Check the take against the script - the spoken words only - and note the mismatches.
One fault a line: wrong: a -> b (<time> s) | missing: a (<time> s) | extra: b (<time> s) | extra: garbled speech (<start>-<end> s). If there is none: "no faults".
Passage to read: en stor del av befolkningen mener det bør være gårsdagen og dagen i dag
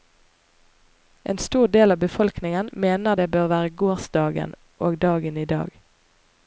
no faults